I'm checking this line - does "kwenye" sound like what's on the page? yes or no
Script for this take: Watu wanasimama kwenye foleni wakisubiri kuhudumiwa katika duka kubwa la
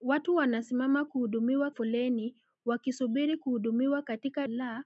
no